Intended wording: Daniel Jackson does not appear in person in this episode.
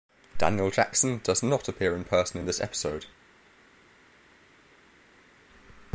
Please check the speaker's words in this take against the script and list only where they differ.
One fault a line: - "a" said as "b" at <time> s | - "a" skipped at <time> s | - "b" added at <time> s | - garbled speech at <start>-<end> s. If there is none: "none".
none